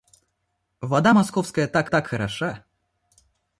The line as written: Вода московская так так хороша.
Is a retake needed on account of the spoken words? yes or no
no